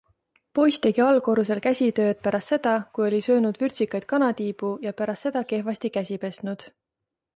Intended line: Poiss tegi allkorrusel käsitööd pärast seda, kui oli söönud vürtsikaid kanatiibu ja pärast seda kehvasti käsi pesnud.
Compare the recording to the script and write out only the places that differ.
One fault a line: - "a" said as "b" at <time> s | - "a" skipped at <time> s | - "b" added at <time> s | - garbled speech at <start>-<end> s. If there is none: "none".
none